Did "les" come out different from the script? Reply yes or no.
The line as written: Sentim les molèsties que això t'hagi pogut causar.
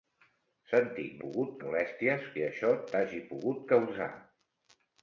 yes